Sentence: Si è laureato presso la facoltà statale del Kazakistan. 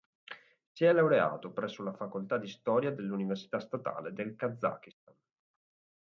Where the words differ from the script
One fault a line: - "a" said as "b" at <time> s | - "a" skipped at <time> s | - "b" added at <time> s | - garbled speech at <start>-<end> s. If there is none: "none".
- "di storia dell'Università" added at 2.4 s